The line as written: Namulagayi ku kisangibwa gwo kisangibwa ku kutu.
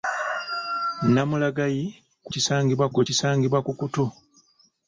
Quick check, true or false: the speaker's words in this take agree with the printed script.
true